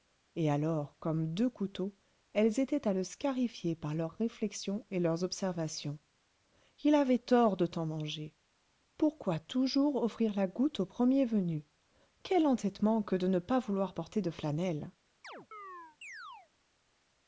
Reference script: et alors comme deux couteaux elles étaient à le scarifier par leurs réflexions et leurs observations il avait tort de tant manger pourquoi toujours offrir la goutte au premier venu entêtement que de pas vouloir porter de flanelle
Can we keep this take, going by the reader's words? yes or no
no